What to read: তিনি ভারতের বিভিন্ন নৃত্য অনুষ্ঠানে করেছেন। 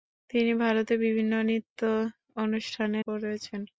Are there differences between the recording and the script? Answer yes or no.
no